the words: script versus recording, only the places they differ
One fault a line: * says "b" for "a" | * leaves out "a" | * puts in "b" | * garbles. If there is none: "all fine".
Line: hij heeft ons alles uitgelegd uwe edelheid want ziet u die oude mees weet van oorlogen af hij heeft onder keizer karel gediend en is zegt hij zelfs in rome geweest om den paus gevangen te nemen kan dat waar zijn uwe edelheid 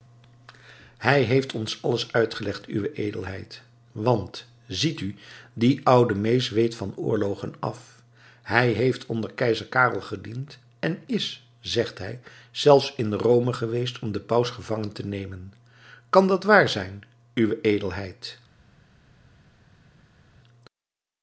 all fine